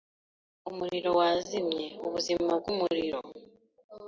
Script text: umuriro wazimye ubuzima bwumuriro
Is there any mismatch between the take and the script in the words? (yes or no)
no